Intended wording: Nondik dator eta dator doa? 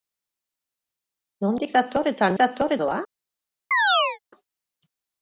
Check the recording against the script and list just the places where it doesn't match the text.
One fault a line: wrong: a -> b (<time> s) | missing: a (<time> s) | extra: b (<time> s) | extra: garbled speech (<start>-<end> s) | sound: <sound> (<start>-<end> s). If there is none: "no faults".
sound: chirp (3.7-4.2 s)